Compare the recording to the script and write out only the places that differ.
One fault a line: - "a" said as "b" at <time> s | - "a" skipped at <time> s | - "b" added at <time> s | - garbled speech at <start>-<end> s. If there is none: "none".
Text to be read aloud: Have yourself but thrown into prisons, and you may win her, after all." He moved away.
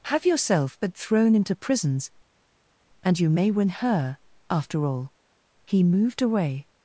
none